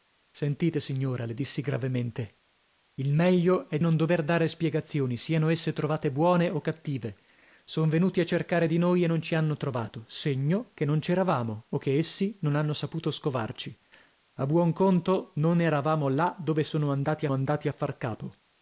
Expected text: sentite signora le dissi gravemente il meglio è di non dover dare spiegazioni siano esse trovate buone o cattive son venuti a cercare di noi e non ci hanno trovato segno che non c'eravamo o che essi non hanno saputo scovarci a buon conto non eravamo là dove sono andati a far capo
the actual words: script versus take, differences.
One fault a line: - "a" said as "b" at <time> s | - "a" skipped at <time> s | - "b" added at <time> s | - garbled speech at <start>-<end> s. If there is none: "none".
- "di" skipped at 3.8 s
- "andati" added at 17.3 s